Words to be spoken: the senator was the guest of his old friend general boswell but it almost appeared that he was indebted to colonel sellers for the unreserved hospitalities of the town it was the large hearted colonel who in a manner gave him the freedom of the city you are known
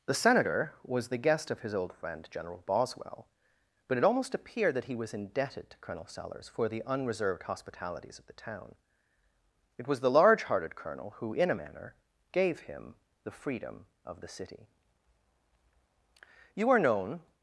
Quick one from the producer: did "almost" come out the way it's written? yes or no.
yes